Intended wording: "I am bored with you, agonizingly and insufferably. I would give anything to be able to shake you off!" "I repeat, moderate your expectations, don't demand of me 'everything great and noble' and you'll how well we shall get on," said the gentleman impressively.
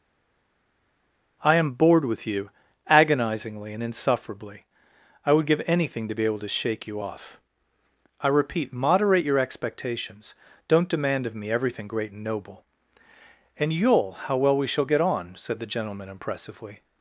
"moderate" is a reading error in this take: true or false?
false